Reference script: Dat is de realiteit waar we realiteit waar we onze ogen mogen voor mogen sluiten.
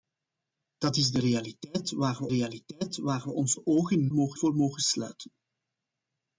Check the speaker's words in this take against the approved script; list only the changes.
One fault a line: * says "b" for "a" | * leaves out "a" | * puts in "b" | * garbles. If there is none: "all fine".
all fine